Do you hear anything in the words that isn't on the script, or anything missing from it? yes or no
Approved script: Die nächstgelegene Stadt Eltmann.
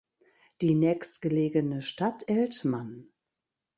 no